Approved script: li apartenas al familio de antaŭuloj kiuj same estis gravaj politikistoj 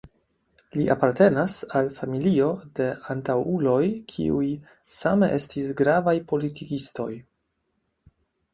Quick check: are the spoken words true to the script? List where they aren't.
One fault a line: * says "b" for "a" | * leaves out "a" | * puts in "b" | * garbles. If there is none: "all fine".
all fine